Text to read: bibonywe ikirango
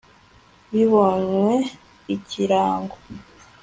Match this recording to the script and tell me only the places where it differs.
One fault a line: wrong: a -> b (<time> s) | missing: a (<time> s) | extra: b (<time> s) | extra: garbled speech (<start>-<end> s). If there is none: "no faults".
no faults